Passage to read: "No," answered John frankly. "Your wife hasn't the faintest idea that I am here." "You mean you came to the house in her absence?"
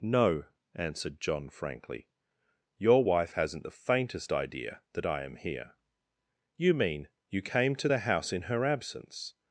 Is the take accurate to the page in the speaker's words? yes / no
yes